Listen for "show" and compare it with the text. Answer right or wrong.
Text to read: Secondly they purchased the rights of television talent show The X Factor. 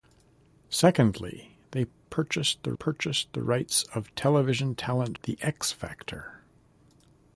wrong